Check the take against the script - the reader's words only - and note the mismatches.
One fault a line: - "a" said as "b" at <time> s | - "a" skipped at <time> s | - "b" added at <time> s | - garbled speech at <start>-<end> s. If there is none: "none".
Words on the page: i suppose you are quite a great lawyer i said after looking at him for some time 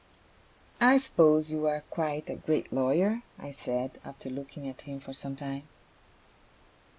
none